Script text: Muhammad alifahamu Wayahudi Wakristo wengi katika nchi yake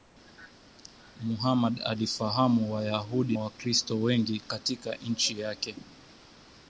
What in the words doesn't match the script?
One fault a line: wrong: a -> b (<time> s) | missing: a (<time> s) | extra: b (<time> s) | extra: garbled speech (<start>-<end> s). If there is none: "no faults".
no faults